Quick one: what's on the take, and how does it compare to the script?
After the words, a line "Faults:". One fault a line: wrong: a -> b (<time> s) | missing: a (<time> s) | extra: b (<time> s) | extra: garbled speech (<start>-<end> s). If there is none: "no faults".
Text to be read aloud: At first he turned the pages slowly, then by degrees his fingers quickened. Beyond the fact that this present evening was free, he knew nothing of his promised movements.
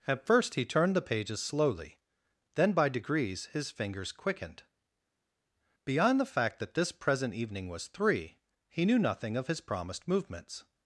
At first he turned the pages slowly, then by degrees his fingers quickened. Beyond the fact that this present evening was three, he knew nothing of his promised movements.
Faults:
wrong: free -> three (7.9 s)